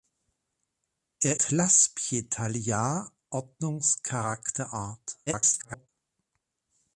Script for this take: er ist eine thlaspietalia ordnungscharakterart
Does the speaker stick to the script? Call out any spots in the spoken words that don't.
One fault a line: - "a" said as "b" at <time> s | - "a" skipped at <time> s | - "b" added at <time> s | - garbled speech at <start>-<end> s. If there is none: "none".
- "ist eine" skipped at 1.4 s
- garbled speech at 5.3-5.9 s